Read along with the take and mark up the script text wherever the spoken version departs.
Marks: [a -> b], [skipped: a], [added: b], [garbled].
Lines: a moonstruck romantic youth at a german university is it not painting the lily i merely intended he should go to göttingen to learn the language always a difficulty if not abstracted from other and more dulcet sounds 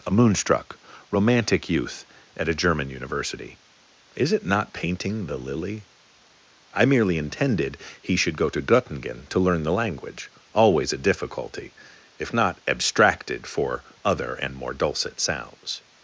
a moonstruck romantic youth at a german university is it not painting the lily i merely intended he should go to göttingen to learn the language always a difficulty if not abstracted [from -> for] other and more dulcet sounds